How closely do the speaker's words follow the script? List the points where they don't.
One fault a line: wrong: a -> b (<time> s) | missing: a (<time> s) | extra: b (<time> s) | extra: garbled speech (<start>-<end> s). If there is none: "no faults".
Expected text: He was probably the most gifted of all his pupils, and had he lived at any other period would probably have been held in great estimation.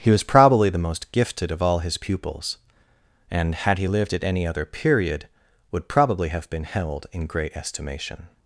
no faults